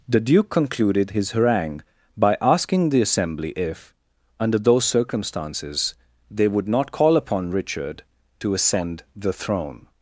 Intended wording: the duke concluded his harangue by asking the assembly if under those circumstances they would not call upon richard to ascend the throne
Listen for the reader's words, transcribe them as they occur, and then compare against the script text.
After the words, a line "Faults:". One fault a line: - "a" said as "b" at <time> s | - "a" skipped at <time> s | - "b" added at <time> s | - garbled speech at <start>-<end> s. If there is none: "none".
the duke concluded his harangue by asking the assembly if under those circumstances they would not call upon richard to ascend the throne
Faults:
none